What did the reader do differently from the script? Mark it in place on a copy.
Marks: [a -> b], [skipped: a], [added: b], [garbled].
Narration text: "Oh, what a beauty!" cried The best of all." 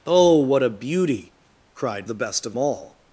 "Oh, what a beauty!" cried The best of all."